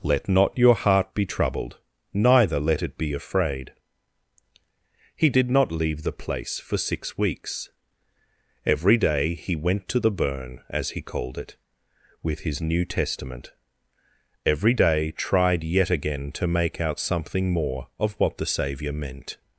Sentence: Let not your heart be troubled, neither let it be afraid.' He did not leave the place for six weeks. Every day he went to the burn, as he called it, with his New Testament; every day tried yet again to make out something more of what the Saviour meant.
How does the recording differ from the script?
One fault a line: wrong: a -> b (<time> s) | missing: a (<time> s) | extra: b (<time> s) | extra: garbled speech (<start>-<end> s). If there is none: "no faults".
no faults